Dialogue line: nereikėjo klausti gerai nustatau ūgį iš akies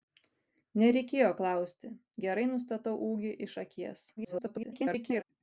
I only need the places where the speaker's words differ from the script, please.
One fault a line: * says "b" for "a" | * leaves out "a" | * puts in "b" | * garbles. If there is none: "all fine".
* garbles